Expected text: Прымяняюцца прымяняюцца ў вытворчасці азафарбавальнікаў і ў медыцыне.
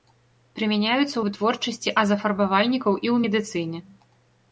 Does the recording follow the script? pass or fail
fail